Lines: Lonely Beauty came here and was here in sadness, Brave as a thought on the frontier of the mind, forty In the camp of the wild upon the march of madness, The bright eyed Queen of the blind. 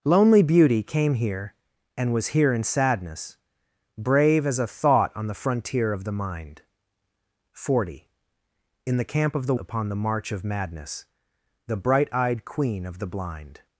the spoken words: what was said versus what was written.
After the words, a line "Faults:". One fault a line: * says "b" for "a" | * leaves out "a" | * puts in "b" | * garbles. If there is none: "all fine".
Lonely Beauty came here and was here in sadness, Brave as a thought on the frontier of the mind, forty In the camp of the upon the march of madness, The bright eyed Queen of the blind.
Faults:
* leaves out "wild"